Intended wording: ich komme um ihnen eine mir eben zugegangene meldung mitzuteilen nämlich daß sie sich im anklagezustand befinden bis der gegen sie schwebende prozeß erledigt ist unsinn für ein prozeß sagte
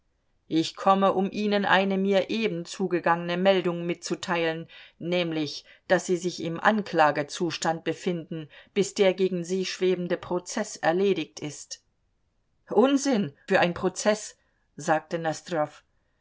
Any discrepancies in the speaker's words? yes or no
no